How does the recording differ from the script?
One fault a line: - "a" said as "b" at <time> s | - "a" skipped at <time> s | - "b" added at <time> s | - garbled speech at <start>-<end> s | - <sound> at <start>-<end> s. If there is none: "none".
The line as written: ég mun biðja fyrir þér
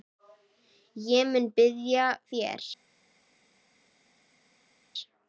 - "fyrir" skipped at 2.1 s